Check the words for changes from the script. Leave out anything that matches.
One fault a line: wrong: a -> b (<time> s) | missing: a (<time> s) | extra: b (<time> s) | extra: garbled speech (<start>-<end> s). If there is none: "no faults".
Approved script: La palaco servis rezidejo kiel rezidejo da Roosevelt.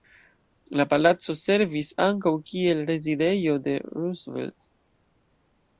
wrong: rezidejo -> ankaŭ (2.1 s)
wrong: da -> de (3.7 s)